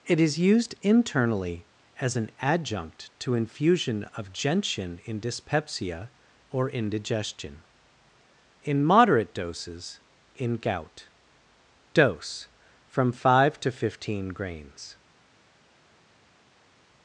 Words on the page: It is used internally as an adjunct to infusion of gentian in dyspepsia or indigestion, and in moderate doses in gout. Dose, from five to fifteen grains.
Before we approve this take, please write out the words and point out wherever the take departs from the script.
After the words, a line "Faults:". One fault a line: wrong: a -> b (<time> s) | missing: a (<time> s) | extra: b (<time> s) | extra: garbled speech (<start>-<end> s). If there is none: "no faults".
It is used internally as an adjunct to infusion of gentian in dyspepsia or indigestion, in moderate doses in gout. Dose, from five to fifteen grains.
Faults:
missing: and (7.6 s)